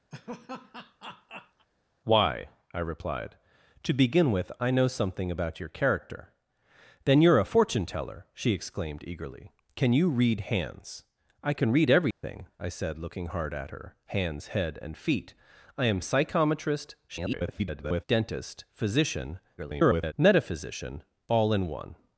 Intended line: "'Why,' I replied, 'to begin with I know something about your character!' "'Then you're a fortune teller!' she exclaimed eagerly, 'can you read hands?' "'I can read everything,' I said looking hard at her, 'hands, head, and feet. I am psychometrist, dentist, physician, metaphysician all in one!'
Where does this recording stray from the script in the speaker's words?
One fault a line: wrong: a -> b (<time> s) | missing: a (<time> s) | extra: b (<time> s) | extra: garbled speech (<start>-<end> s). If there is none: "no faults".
extra: garbled speech (17.1-18.0 s)
extra: garbled speech (19.6-20.1 s)